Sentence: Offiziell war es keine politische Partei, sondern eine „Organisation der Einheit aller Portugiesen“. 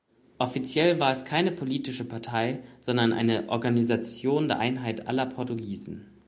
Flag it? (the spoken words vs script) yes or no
no